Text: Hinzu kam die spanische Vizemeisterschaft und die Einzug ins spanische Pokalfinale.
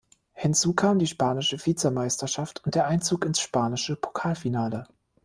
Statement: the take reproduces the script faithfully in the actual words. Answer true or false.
false